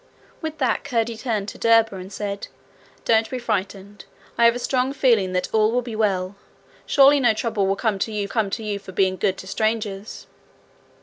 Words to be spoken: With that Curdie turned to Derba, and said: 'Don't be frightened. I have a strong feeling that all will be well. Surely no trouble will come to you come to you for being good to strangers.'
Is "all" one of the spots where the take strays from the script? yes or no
no